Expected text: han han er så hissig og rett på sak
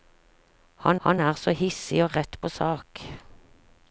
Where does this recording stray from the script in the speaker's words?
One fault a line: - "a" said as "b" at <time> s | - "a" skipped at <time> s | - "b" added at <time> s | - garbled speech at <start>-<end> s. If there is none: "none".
none